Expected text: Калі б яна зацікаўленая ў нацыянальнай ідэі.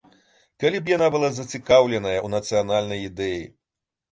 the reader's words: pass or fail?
fail